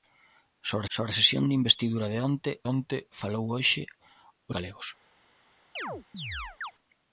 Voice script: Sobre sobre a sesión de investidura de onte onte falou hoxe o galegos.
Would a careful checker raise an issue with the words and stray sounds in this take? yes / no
yes